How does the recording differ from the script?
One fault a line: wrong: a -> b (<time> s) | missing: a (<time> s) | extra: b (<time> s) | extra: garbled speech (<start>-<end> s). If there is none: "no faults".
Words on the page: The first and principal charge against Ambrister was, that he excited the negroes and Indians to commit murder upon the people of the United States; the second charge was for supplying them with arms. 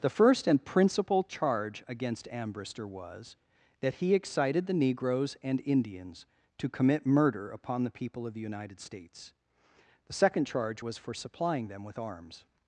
no faults